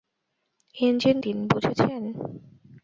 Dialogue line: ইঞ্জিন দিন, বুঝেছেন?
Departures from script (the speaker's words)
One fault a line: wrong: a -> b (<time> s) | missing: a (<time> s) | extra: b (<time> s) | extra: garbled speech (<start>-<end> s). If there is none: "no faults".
no faults